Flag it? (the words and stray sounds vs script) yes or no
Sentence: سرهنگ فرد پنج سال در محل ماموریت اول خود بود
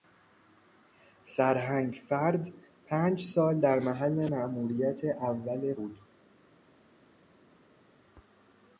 yes